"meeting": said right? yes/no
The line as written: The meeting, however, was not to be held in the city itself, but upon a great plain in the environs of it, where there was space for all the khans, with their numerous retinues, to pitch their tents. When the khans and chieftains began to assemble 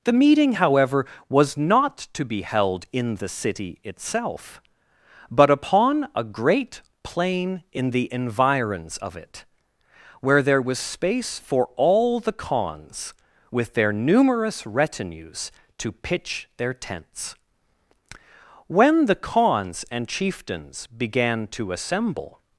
yes